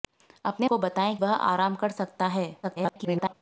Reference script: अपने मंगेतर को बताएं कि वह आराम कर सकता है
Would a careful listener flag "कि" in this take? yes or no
yes